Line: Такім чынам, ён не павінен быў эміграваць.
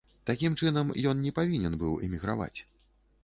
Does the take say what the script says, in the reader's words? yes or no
yes